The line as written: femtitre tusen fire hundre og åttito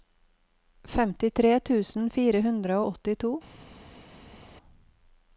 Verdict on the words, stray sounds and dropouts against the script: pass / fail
pass